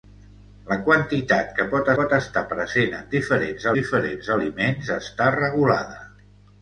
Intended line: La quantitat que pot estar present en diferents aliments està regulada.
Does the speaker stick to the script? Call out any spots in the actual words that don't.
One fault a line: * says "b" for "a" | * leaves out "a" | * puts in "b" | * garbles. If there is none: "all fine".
* puts in "pot"
* puts in "diferents"